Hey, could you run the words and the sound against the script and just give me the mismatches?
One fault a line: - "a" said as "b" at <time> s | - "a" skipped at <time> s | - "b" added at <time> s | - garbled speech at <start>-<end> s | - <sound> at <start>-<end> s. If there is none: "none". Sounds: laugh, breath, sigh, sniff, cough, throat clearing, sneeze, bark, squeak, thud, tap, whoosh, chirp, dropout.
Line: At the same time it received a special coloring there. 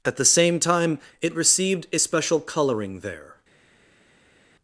none